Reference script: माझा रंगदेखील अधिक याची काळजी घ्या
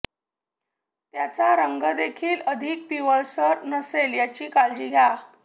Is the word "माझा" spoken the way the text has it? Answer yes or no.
no